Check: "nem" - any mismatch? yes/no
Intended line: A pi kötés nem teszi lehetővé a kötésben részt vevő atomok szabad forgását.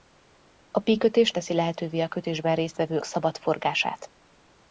yes